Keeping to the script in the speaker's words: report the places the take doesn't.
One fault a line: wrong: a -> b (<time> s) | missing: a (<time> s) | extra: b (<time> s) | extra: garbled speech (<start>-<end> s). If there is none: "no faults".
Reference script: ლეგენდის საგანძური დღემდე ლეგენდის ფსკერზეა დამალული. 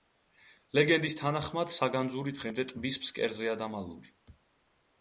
extra: თანახმად (1.2 s)
wrong: ლეგენდის -> ტბის (2.7 s)